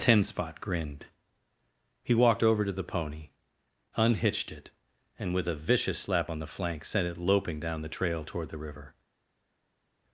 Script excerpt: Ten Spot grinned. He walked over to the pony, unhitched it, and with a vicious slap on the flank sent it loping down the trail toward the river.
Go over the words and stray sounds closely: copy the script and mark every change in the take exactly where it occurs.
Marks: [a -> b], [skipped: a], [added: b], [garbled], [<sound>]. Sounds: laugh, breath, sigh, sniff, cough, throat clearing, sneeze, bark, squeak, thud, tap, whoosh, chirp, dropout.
Ten Spot grinned. He walked over to the pony, unhitched it, and with a vicious slap on the flank sent it loping down the trail toward the river.